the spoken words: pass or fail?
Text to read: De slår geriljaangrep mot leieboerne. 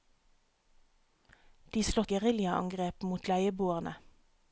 pass